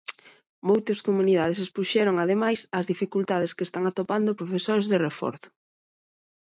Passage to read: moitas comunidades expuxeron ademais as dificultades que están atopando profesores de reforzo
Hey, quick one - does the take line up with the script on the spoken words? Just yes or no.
yes